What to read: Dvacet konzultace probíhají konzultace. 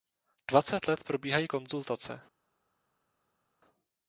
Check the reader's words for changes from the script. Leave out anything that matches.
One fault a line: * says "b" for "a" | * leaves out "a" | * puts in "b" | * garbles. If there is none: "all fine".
* says "let" for "konzultace"